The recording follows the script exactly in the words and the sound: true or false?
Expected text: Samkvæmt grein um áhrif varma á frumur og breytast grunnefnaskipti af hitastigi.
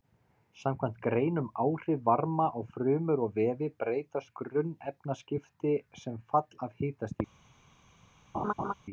false